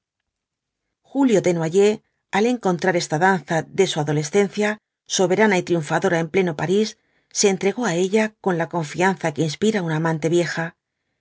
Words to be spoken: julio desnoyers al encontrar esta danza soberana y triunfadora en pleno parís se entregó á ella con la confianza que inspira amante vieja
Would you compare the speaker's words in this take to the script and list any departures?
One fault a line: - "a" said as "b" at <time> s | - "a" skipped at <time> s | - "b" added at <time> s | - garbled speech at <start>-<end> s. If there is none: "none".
- "de su adolescencia" added at 3.6 s
- "una" added at 9.8 s